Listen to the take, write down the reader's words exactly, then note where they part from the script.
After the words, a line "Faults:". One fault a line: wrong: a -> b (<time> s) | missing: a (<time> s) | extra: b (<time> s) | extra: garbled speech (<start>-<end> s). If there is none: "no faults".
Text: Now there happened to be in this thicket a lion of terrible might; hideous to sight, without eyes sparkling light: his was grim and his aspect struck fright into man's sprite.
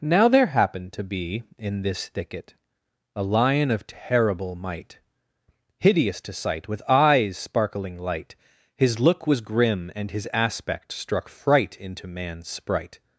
Now there happened to be in this thicket a lion of terrible might; hideous to sight, with eyes sparkling light: his look was grim and his aspect struck fright into man's sprite.
Faults:
wrong: without -> with (6.7 s)
extra: look (9.0 s)